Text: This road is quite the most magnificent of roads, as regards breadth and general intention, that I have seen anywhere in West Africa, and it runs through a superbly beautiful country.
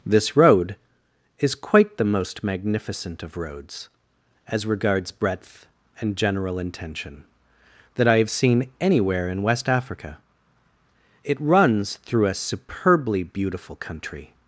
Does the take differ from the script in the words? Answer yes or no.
yes